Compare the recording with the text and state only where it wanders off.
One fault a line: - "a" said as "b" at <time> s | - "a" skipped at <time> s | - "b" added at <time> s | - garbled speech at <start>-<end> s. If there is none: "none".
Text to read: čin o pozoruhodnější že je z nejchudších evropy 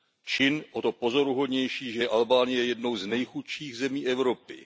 - "to" added at 0.8 s
- "albánie jednou" added at 2.1 s
- "zemí" added at 3.8 s